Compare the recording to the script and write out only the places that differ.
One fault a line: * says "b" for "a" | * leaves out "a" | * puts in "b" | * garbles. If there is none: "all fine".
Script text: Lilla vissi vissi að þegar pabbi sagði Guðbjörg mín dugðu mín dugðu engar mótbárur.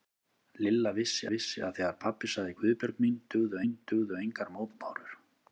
all fine